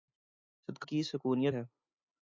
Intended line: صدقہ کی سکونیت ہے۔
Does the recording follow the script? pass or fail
pass